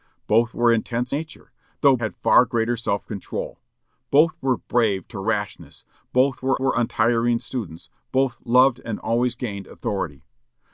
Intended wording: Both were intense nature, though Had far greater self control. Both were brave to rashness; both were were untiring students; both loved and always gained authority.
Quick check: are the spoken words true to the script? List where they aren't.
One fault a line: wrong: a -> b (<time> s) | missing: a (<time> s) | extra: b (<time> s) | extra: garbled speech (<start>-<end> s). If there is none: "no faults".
no faults